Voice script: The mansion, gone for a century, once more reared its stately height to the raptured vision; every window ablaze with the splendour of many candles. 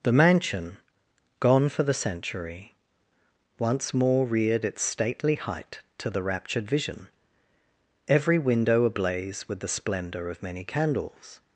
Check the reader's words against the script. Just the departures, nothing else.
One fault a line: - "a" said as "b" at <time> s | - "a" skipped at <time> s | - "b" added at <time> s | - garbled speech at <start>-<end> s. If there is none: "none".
- "a" said as "the" at 1.8 s